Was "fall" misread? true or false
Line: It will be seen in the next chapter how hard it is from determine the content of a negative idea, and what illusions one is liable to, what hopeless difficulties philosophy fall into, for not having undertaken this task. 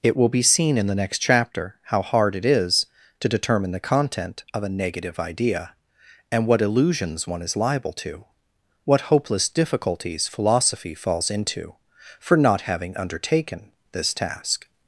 true